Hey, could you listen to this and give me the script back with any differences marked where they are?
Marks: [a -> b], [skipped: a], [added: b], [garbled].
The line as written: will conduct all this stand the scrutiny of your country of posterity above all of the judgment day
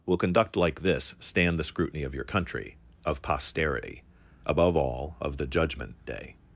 will conduct [all -> like] this stand the scrutiny of your country of posterity above all of the judgment day